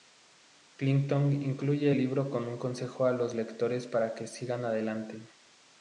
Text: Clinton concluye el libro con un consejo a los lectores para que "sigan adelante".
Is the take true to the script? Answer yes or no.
yes